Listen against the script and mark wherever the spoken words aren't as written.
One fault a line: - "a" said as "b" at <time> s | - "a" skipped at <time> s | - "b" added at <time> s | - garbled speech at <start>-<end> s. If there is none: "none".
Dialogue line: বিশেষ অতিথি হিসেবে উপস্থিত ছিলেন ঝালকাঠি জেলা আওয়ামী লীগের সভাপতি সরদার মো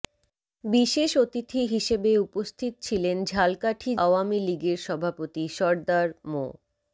- "জেলা" skipped at 3.9 s